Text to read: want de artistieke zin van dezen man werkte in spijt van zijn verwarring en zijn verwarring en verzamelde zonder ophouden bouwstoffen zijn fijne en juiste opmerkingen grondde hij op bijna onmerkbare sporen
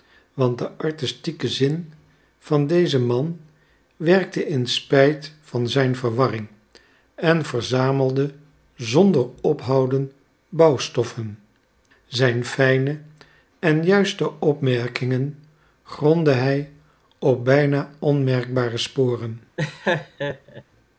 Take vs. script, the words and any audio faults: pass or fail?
fail